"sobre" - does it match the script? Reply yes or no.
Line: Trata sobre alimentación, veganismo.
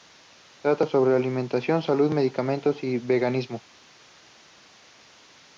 yes